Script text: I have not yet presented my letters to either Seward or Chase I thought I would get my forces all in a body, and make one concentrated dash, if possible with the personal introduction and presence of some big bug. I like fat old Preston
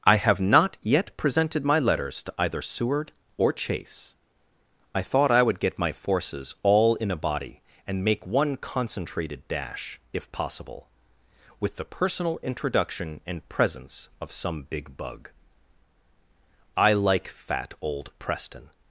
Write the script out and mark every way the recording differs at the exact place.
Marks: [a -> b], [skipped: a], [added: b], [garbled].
I have not yet presented my letters to either Seward or Chase I thought I would get my forces all in a body, and make one concentrated dash, if possible with the personal introduction and presence of some big bug. I like fat old Preston